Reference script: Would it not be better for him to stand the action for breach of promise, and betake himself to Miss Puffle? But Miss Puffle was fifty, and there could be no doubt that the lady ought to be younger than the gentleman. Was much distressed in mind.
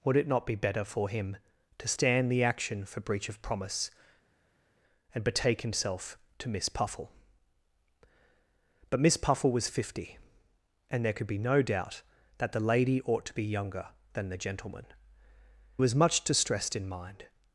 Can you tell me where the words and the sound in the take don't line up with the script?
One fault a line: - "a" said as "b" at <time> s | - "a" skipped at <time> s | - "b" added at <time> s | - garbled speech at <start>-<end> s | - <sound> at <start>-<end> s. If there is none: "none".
none